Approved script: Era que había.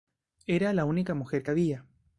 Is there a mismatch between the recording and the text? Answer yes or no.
yes